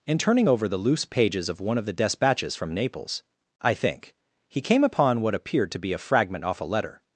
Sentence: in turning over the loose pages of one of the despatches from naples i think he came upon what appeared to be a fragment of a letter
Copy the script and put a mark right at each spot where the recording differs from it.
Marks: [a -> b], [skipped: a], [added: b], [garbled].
in turning over the loose pages of one of the despatches from naples i think he came upon what appeared to be a fragment [of -> off] a letter